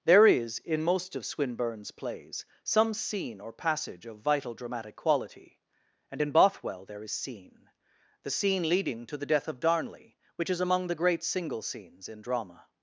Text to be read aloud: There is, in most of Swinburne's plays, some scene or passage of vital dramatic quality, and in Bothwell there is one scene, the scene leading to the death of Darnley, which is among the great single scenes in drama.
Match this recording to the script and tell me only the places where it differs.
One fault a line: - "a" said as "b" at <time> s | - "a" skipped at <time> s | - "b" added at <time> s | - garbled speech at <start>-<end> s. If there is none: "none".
- "one" skipped at 7.1 s